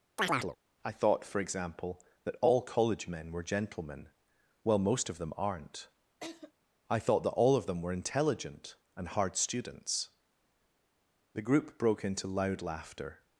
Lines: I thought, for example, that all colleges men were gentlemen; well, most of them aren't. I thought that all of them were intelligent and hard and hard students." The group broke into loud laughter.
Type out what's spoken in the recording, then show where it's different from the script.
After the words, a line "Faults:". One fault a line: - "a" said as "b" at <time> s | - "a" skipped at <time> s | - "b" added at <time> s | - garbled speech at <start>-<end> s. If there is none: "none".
I thought, for example, that all college men were gentlemen; well, most of them aren't. I thought that all of them were intelligent and hard students." The group broke into loud laughter.
Faults:
- "colleges" said as "college" at 2.6 s
- "and hard" skipped at 9.4 s